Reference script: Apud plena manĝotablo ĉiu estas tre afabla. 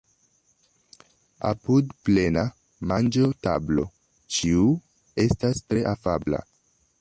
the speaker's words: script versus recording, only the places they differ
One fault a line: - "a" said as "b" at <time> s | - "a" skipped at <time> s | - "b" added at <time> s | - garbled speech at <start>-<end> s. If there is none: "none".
none